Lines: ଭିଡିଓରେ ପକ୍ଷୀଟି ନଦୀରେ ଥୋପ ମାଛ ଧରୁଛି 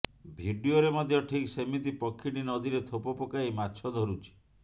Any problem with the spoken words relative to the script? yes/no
yes